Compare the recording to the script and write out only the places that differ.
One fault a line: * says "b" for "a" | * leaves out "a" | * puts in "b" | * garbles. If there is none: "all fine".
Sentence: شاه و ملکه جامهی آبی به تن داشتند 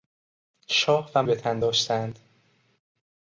* leaves out "ملکه جامهی آبی"